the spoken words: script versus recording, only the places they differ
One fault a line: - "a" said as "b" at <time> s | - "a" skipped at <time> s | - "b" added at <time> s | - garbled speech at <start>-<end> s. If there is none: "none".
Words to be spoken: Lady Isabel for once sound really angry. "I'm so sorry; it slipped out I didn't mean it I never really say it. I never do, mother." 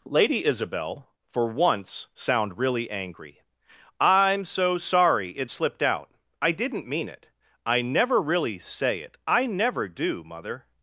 none